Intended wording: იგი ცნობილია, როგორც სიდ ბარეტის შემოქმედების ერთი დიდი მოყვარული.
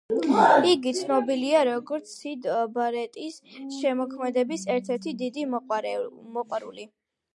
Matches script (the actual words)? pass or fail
fail